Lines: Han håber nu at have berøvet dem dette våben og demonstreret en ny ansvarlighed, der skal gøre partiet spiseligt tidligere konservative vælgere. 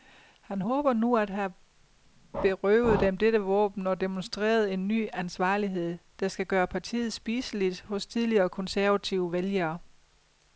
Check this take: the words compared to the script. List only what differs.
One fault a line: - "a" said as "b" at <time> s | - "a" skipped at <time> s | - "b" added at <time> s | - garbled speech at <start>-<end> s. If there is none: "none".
- "hos" added at 7.8 s